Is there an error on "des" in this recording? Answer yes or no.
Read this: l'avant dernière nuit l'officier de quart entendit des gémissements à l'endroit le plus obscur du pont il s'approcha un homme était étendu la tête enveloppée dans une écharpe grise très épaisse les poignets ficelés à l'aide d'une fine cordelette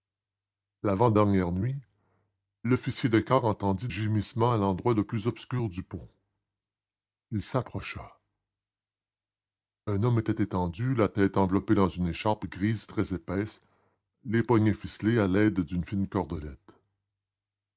yes